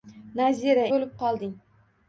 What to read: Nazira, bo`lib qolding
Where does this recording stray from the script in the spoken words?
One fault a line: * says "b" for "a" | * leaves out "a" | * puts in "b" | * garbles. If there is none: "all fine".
all fine